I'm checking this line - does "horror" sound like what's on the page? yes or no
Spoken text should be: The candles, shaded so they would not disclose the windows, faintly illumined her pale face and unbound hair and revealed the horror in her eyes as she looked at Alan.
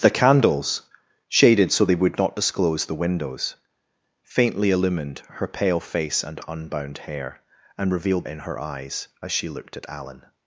no